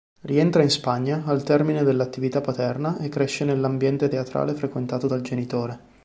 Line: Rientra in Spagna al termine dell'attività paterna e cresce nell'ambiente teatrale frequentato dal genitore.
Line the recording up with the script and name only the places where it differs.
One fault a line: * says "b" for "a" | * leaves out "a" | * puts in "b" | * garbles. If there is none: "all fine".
all fine